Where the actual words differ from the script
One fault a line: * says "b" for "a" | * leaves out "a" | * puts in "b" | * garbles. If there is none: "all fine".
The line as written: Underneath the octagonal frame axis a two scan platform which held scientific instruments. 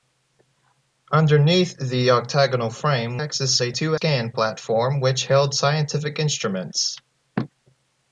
all fine